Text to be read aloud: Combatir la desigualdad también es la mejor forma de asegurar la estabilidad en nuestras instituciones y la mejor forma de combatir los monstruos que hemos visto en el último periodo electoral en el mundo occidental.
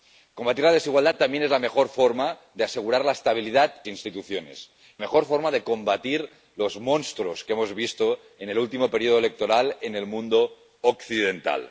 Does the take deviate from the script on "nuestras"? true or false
true